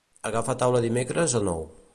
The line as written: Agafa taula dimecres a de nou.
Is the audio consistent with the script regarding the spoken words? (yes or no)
yes